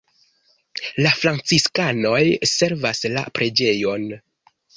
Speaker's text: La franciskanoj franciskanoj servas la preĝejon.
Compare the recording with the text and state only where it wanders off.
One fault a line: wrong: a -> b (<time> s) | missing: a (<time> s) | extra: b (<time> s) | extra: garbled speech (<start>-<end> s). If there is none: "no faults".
missing: franciskanoj (2.2 s)